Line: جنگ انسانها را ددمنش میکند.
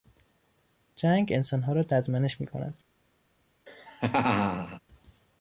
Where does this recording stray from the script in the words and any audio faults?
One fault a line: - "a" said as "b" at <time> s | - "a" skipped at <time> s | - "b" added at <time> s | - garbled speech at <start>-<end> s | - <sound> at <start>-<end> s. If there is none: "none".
- laugh at 3.7-4.8 s